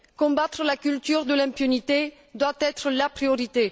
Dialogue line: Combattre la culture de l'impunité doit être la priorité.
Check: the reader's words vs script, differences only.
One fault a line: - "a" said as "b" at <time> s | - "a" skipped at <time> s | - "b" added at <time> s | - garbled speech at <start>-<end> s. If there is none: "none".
none